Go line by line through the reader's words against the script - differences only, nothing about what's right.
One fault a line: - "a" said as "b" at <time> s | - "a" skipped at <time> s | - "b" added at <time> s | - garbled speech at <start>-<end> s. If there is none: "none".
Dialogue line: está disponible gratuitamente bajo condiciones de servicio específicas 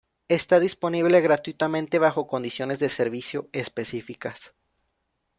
none